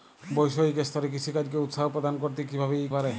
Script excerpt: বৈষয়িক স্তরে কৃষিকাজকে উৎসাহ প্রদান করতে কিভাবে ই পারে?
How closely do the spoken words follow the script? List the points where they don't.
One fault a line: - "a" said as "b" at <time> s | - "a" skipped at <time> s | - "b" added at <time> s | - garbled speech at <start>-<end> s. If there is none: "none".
none